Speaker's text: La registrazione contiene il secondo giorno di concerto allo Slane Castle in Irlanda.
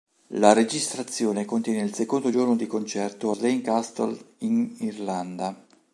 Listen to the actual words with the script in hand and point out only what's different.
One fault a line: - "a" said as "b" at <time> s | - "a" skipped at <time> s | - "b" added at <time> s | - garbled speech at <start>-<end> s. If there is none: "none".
- "allo" skipped at 3.3 s